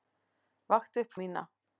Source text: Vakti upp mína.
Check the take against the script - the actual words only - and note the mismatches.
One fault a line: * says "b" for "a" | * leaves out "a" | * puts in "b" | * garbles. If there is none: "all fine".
all fine